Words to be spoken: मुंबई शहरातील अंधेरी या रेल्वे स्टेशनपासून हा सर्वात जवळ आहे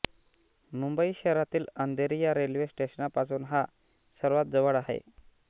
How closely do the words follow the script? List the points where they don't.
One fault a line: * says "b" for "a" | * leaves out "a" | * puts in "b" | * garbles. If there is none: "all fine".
all fine